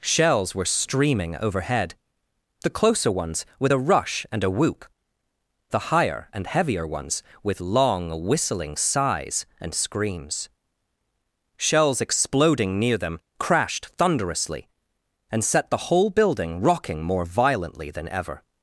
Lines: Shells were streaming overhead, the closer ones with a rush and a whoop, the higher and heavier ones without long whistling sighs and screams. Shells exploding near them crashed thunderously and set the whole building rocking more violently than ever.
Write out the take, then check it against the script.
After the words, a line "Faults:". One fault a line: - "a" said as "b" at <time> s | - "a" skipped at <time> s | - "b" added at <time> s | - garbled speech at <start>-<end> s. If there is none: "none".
Shells were streaming overhead, the closer ones with a rush and a whoop, the higher and heavier ones with long whistling sighs and screams. Shells exploding near them crashed thunderously and set the whole building rocking more violently than ever.
Faults:
- "without" said as "with" at 7.4 s